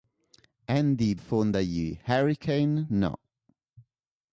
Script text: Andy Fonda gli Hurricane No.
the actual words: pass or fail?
pass